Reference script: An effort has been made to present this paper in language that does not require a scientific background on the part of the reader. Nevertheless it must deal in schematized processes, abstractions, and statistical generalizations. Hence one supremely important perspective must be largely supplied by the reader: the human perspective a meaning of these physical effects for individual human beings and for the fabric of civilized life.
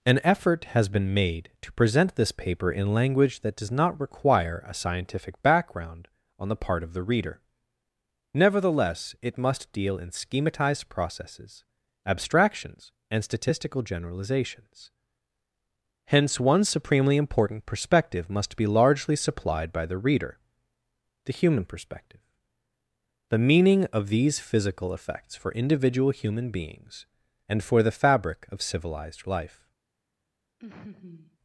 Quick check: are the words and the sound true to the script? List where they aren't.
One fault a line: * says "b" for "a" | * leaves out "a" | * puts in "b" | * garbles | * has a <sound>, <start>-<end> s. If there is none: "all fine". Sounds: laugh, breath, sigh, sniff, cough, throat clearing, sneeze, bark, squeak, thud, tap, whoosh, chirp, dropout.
* says "the" for "a"
* has a laugh, 30.6-31.4 s